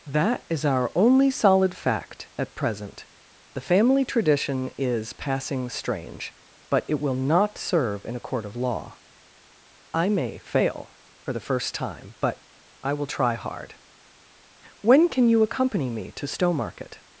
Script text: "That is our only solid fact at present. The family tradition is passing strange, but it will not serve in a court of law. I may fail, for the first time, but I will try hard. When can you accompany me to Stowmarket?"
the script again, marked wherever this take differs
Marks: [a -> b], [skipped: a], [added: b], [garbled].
"That is our only solid fact at present. The family tradition is passing strange, but it will not serve in a court of law. I may fail, for the first time, but I will try hard. When can you accompany me to Stowmarket?"